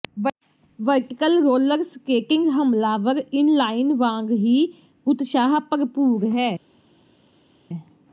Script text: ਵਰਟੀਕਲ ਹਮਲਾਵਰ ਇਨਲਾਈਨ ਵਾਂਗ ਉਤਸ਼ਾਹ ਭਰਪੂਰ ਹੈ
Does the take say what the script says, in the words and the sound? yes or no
no